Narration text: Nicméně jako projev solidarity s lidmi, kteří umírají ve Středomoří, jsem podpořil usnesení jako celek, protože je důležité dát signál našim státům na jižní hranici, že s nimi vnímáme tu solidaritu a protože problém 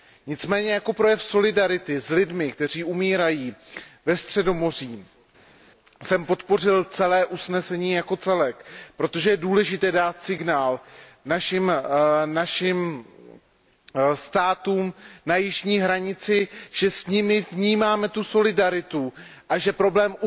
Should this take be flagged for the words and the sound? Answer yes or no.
yes